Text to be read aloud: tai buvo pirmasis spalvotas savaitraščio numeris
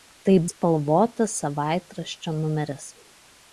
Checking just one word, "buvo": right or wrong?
wrong